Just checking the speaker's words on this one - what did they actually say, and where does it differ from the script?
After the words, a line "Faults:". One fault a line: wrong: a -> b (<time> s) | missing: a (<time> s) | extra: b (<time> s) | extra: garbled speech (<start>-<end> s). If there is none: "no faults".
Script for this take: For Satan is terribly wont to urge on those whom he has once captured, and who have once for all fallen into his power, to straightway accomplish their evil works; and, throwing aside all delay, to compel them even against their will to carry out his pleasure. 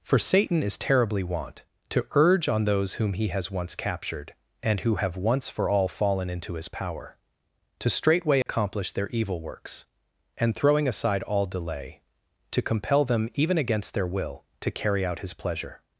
For Satan is terribly wont to urge on those whom he has once captured, and who have once for all fallen into his power, to straightway accomplish their evil works; and, throwing aside all delay, to compel them even against their will to carry out his pleasure.
Faults:
no faults